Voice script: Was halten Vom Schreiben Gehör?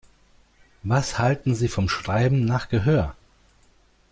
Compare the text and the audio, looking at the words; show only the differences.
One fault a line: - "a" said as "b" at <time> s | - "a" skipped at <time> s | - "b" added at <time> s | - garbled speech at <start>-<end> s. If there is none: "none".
- "Sie" added at 1.5 s
- "nach" added at 2.4 s